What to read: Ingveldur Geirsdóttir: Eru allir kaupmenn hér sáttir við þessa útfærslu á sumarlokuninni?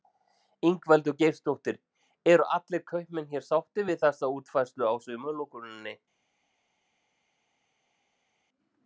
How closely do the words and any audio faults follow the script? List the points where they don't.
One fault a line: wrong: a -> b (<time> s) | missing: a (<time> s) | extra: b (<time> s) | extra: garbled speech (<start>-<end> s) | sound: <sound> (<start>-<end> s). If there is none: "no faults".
no faults